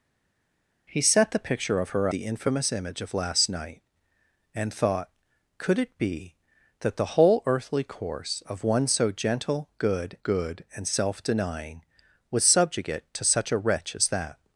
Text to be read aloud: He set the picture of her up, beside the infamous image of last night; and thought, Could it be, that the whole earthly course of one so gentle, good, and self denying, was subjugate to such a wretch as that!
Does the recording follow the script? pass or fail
fail